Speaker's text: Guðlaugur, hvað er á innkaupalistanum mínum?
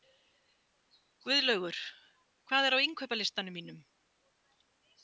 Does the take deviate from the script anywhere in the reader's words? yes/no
no